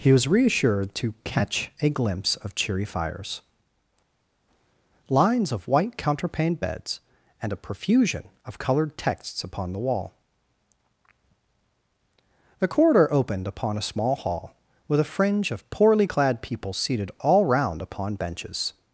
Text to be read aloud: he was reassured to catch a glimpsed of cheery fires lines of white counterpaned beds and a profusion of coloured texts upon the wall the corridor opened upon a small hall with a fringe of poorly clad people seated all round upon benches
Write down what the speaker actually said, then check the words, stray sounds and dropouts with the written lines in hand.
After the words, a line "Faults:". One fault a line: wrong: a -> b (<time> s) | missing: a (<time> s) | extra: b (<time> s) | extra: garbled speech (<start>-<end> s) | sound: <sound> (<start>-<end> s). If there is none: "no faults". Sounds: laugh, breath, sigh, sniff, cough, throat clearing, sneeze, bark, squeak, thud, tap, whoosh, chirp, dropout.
he was reassured to catch a glimpse of cheery fires lines of white counterpaned beds and a profusion of coloured texts upon the wall the corridor opened upon a small hall with a fringe of poorly clad people seated all round upon benches
Faults:
wrong: glimpsed -> glimpse (1.9 s)